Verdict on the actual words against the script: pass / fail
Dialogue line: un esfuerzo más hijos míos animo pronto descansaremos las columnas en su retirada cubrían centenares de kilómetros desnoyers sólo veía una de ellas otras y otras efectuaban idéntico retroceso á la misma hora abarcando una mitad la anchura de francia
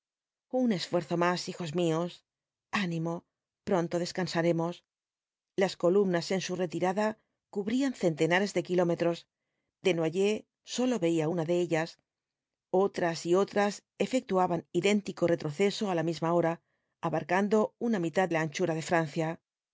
pass